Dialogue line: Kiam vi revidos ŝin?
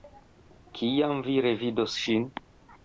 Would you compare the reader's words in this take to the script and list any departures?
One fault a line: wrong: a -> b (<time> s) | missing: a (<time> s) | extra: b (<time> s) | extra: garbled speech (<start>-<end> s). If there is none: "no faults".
no faults